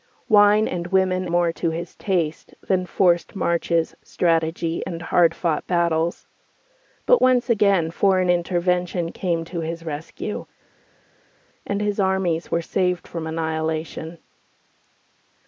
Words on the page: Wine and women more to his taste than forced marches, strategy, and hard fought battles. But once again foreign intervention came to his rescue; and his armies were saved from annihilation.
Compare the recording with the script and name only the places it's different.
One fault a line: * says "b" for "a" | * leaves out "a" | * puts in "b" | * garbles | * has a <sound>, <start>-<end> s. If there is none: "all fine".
all fine